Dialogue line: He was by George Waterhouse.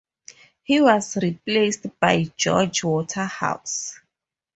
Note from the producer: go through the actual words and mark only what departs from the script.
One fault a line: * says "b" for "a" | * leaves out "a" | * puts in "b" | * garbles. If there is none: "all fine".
* puts in "replaced"